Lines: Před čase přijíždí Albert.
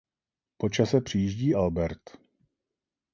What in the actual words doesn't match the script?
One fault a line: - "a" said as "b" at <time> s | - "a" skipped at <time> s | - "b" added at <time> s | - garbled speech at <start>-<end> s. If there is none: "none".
- "Před" said as "Po" at 0.6 s